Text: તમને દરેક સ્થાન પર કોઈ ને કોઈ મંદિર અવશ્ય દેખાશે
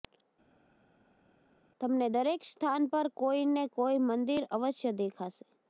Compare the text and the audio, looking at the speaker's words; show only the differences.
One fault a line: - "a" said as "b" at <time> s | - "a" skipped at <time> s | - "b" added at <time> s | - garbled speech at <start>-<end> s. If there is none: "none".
none